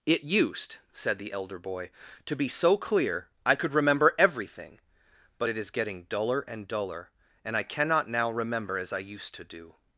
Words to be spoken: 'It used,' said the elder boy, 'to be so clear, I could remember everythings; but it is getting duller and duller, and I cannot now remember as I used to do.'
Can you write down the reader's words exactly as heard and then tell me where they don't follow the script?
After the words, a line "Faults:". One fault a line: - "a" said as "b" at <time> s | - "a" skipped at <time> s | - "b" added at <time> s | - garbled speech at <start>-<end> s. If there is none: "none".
'It used,' said the elder boy, 'to be so clear, I could remember everything; but it is getting duller and duller, and I cannot now remember as I used to do.'
Faults:
- "everythings" said as "everything" at 4.2 s